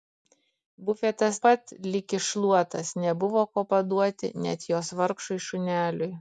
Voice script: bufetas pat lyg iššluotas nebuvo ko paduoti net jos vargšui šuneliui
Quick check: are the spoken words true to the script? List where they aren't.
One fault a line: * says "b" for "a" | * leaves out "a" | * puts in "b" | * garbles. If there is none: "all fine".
all fine